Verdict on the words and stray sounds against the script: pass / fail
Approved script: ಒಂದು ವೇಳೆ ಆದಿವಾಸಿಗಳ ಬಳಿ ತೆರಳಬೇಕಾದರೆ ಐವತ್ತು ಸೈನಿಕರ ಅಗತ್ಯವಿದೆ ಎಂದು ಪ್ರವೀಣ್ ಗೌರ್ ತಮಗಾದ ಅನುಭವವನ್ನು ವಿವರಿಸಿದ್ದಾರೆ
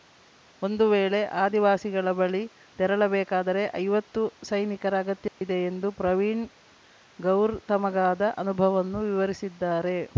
fail